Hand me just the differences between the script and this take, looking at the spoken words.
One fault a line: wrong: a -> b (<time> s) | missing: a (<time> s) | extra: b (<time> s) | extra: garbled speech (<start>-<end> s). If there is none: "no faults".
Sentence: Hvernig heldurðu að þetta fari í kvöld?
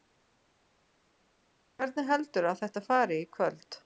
no faults